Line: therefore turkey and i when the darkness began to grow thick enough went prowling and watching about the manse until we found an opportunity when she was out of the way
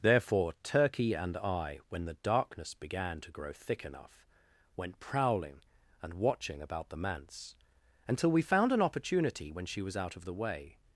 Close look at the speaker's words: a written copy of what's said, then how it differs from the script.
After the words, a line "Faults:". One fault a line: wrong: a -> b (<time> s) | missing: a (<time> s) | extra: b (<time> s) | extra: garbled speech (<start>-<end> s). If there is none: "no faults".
therefore turkey and i when the darkness began to grow thick enough went prowling and watching about the manse until we found an opportunity when she was out of the way
Faults:
no faults